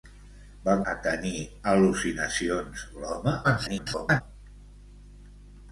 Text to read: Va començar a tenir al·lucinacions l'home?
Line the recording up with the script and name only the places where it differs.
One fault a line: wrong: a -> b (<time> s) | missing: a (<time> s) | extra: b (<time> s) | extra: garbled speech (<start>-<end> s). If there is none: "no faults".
missing: començar (0.7 s)
extra: garbled speech (3.4-4.2 s)